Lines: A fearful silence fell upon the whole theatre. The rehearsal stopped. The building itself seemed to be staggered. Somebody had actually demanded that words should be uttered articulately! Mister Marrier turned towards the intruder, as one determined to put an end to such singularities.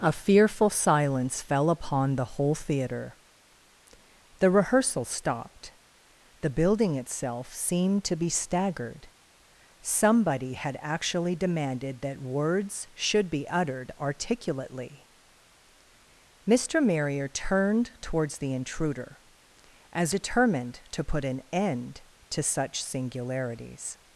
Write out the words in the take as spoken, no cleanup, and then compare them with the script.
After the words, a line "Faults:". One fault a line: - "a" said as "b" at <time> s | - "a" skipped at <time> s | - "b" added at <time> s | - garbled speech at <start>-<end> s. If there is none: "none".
A fearful silence fell upon the whole theatre. The rehearsal stopped. The building itself seemed to be staggered. Somebody had actually demanded that words should be uttered articulately! Mister Marrier turned towards the intruder, as determined to put an end to such singularities.
Faults:
- "one" skipped at 20.1 s